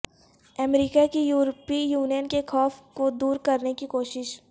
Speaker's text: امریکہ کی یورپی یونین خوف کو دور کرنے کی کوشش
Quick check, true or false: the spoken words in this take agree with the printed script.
false